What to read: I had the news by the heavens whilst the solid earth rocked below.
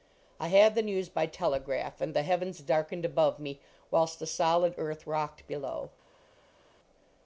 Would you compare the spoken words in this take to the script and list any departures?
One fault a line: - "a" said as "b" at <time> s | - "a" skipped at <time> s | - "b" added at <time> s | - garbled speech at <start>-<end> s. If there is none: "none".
- "telegraph and" added at 1.3 s
- "darkened above me" added at 2.6 s